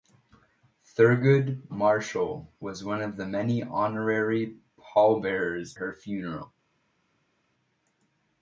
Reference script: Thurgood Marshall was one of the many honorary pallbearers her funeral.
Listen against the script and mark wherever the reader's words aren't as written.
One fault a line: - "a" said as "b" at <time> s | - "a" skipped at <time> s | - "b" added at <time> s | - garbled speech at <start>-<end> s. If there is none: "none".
none